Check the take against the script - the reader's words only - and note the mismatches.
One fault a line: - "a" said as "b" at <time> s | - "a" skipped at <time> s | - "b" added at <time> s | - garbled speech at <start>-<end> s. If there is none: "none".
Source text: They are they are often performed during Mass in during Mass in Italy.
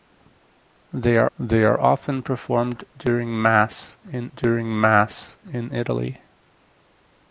none